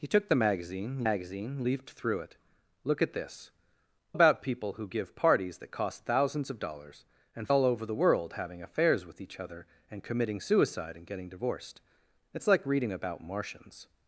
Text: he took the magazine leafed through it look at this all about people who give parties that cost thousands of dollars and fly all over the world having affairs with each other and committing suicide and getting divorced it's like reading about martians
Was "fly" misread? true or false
true